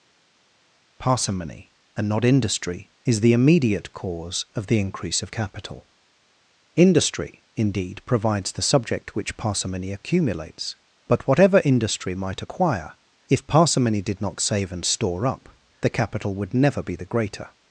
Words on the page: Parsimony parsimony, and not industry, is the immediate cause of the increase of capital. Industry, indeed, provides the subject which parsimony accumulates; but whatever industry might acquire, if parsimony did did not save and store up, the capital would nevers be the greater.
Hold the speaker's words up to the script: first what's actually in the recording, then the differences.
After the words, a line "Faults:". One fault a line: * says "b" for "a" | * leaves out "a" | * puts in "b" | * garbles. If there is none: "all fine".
Parsimony, and not industry, is the immediate cause of the increase of capital. Industry, indeed, provides the subject which parsimony accumulates; but whatever industry might acquire, if parsimony did not save and store up, the capital would never be the greater.
Faults:
* leaves out "parsimony"
* leaves out "did"
* says "never" for "nevers"